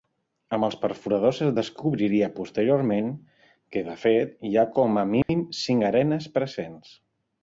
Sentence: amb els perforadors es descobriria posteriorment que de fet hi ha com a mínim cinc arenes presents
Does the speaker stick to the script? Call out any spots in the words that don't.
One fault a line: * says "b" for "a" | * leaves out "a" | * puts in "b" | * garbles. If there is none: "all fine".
all fine